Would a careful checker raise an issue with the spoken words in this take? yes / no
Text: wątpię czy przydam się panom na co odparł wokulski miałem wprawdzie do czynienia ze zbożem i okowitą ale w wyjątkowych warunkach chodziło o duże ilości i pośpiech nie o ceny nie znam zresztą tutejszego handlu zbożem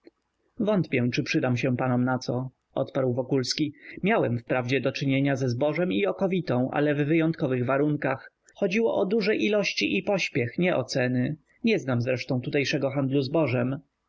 no